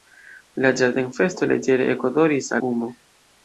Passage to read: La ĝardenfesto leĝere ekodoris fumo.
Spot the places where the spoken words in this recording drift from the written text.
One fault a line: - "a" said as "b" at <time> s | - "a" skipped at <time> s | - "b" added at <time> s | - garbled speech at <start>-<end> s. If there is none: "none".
none